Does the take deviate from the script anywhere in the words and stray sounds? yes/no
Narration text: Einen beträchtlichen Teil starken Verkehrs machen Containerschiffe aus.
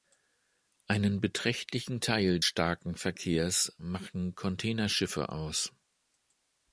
no